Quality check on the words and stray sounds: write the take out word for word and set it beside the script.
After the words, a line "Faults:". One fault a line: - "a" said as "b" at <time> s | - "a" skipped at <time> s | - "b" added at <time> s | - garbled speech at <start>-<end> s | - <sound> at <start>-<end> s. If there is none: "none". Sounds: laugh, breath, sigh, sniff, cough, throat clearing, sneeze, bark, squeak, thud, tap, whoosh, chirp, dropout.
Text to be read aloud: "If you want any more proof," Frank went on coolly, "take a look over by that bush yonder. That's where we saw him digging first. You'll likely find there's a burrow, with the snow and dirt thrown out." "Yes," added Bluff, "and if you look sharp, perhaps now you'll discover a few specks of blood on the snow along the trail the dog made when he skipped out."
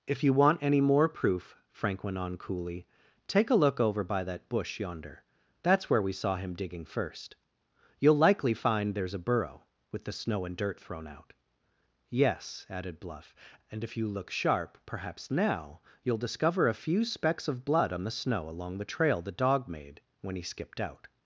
"If you want any more proof," Frank went on coolly, "take a look over by that bush yonder. That's where we saw him digging first. You'll likely find there's a burrow, with the snow and dirt thrown out." "Yes," added Bluff, "and if you look sharp, perhaps now you'll discover a few specks of blood on the snow along the trail the dog made when he skipped out."
Faults:
none